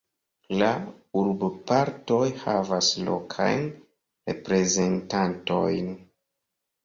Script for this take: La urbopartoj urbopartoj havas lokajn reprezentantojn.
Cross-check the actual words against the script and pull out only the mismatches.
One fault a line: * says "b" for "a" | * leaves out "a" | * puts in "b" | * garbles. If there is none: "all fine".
* leaves out "urbopartoj"